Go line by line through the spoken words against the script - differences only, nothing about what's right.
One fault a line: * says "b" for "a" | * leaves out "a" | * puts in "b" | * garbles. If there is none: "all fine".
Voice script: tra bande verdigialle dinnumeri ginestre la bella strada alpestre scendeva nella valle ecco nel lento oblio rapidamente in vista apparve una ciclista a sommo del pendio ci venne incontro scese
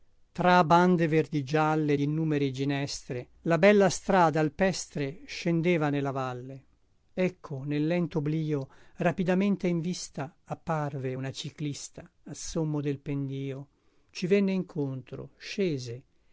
all fine